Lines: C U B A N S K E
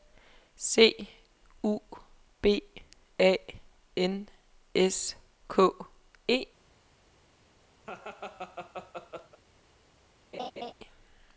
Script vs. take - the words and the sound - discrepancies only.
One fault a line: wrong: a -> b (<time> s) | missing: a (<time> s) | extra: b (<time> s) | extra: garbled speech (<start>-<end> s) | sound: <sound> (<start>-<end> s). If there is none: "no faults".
sound: laugh (7.8-9.4 s)
sound: laugh (10.3-10.7 s)